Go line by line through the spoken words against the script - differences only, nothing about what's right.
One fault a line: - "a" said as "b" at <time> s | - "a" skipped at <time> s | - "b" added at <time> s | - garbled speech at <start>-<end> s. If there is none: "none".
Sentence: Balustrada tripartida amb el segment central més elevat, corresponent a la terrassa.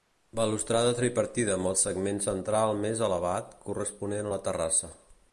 none